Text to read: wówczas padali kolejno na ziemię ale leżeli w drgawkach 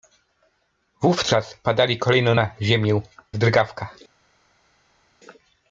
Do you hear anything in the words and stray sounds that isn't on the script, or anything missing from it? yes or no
yes